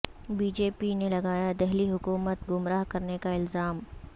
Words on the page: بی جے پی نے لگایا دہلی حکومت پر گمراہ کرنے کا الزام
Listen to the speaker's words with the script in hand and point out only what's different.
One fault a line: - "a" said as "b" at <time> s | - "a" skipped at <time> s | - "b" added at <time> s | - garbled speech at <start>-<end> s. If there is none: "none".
- "پر" skipped at 2.5 s